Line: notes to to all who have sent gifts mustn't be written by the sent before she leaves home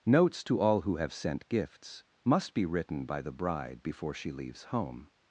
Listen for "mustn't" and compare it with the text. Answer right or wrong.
wrong